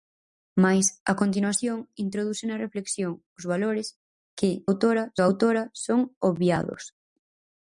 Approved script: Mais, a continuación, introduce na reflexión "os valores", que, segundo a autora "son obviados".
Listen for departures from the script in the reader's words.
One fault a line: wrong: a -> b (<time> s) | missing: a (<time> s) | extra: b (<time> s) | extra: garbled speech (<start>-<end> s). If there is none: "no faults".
wrong: segundo -> autora (4.7 s)